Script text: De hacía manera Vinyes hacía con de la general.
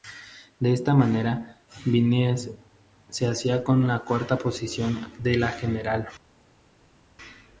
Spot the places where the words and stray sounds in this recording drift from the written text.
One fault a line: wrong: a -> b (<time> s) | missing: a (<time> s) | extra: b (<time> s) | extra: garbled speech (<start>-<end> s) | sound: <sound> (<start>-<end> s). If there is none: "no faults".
wrong: hacía -> esta (0.7 s)
extra: se (3.1 s)
extra: la cuarta posición (3.9 s)